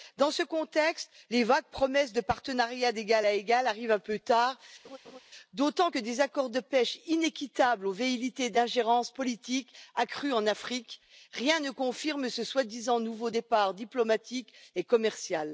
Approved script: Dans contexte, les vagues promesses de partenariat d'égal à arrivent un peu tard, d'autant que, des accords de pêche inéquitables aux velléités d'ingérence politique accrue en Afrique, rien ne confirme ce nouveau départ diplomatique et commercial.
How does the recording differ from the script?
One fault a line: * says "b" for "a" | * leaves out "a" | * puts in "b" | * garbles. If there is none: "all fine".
* puts in "ce"
* puts in "égal"
* puts in "soi disant"